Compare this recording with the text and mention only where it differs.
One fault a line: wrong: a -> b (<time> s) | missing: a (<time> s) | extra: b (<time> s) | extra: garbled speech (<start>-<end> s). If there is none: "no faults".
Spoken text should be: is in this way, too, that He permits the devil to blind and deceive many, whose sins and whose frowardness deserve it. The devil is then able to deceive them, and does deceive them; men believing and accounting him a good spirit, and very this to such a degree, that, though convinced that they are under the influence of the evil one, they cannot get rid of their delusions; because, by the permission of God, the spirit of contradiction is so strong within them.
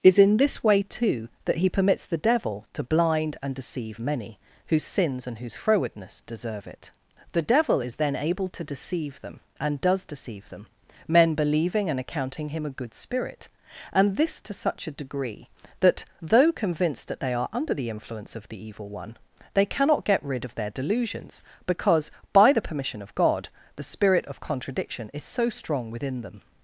missing: very (14.2 s)